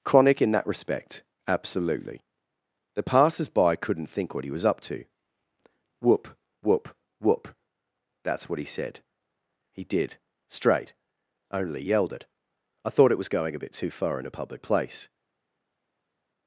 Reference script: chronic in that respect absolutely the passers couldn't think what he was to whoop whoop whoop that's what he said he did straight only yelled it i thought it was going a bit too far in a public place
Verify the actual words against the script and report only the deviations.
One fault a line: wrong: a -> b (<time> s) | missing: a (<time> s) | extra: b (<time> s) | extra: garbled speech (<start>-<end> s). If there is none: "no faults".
extra: by (3.5 s)
extra: up (4.7 s)